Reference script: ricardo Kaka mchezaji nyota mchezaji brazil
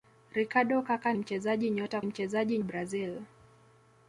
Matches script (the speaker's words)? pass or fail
pass